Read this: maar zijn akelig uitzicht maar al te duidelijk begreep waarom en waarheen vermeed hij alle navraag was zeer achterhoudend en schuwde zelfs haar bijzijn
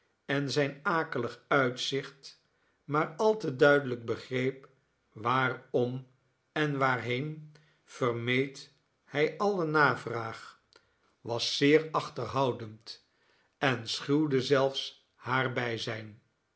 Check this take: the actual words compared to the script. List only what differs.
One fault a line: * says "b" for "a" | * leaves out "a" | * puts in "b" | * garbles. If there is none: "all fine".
* says "en" for "maar"